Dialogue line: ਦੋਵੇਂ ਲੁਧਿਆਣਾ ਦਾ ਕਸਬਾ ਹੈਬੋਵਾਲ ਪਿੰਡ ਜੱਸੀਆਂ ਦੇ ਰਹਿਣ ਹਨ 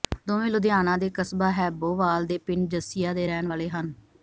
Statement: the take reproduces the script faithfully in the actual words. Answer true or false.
false